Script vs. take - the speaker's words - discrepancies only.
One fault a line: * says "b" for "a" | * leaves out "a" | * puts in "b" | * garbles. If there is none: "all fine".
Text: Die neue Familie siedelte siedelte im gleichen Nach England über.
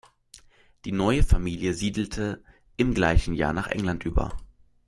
* leaves out "siedelte"
* puts in "Jahr"